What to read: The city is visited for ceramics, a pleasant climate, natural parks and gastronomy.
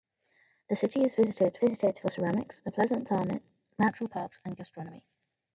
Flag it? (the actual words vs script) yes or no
yes